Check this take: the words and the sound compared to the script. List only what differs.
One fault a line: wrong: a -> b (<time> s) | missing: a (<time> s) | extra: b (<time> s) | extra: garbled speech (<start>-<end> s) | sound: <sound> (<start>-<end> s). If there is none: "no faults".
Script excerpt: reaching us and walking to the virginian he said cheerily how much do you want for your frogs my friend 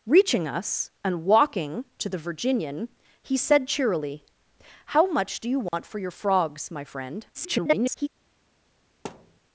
sound: dropout (5.7-5.7 s)
extra: garbled speech (7.3-8.1 s)
sound: thud (9.0-9.4 s)